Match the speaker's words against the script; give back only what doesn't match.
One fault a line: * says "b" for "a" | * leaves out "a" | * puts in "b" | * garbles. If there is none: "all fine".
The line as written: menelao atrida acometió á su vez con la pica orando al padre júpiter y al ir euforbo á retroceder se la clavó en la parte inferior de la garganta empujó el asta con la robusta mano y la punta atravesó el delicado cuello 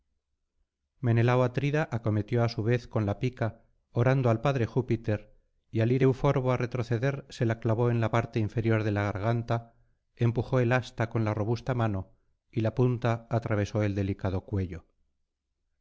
all fine